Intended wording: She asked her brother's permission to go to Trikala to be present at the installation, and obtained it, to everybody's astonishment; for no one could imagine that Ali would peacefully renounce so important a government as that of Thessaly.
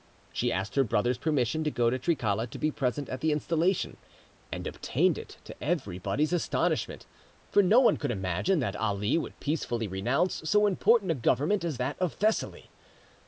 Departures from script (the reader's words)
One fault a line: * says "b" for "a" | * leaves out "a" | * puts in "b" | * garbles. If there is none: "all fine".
all fine